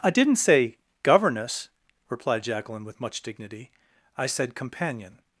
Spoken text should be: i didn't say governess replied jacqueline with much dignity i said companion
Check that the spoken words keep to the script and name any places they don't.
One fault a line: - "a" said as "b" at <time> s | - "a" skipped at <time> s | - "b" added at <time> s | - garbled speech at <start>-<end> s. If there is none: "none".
none